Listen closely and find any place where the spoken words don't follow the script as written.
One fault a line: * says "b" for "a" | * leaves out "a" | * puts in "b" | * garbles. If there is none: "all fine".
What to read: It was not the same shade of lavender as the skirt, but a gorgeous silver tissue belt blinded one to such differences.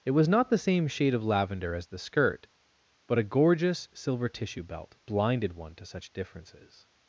all fine